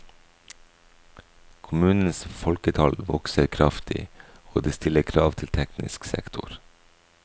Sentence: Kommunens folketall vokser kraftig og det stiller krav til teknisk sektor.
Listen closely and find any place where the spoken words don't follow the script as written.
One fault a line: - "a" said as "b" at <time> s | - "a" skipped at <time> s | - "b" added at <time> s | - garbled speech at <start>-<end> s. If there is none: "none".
none